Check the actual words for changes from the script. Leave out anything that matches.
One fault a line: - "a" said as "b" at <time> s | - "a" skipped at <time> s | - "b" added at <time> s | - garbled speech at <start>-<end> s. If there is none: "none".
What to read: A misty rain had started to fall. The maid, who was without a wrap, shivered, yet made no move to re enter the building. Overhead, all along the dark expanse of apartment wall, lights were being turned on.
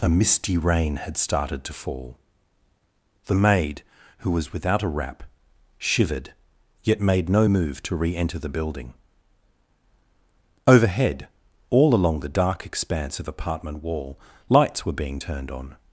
none